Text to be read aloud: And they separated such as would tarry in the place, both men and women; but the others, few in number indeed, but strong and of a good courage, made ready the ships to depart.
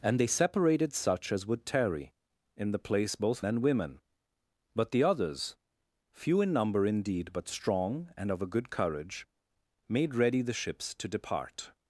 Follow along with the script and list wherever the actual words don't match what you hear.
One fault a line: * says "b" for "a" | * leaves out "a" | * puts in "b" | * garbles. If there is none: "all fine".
* leaves out "men"